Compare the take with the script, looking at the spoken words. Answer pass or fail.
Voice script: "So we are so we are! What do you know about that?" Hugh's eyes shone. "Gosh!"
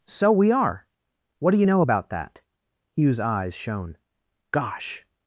fail